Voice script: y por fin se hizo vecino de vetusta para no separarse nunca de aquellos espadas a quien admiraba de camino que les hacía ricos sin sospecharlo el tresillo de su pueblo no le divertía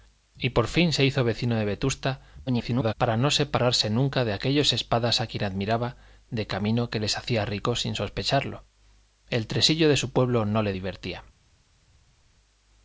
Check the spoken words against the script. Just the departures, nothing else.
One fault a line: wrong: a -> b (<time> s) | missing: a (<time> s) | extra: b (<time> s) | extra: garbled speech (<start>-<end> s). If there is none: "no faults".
extra: garbled speech (2.5-2.9 s)